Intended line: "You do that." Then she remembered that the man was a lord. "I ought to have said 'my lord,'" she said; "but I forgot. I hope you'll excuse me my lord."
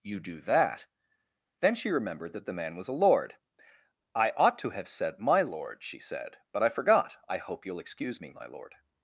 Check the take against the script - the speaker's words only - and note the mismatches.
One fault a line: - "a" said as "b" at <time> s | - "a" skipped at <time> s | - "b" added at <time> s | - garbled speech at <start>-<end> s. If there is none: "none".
none